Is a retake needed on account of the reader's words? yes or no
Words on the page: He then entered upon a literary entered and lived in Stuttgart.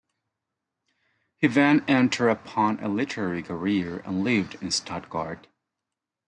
yes